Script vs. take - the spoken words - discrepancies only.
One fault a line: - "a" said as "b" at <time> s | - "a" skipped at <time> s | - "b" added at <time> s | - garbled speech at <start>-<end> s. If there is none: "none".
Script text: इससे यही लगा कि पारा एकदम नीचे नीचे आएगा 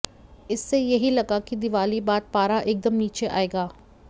- "दिवाली बाद" added at 1.6 s
- "नीचे" skipped at 3.3 s